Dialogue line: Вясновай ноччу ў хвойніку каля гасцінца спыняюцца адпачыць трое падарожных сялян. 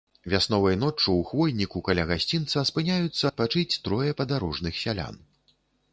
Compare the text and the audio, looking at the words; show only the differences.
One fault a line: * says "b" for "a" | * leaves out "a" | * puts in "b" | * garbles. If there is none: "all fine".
all fine